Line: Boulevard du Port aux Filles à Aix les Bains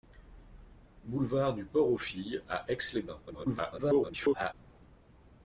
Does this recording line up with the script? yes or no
no